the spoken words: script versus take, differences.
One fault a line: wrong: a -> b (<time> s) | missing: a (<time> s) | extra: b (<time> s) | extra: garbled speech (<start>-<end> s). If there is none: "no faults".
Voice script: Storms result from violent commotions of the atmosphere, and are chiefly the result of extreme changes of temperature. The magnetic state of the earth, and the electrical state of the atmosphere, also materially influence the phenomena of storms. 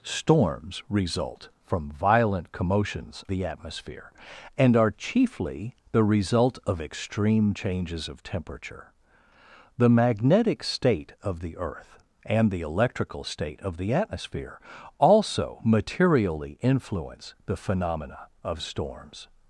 missing: of (3.2 s)